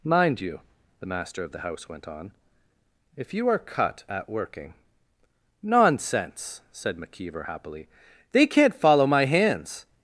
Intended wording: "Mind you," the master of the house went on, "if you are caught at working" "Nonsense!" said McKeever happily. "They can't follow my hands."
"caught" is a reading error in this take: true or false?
true